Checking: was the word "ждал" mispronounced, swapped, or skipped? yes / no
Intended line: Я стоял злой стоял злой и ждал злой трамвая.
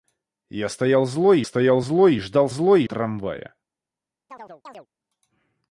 no